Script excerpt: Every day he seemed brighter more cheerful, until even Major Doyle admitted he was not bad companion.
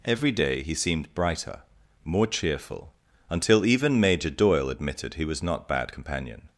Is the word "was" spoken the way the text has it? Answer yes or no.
yes